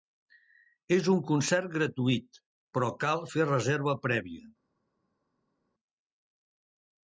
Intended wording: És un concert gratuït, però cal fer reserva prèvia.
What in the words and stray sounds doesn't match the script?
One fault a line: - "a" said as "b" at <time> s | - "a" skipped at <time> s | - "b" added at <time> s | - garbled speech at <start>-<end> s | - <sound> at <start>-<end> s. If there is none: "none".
none